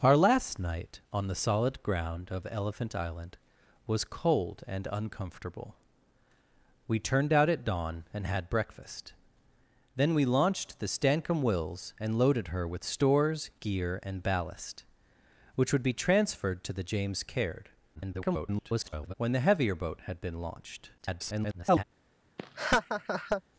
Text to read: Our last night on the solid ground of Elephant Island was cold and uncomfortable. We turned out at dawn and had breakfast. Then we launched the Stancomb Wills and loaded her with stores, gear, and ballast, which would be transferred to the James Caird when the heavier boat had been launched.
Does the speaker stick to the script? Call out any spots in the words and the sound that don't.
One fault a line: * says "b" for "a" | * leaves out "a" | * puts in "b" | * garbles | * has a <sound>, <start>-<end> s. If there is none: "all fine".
* garbles
* garbles
* has a laugh, 22.4-23.4 s